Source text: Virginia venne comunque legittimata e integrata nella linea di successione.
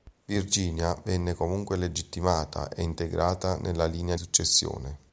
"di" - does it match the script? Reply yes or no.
no